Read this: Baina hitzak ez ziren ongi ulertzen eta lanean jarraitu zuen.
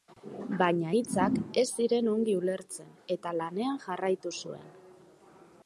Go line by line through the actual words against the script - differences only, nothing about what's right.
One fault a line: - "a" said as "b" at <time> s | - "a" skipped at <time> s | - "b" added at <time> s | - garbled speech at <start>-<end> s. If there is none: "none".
none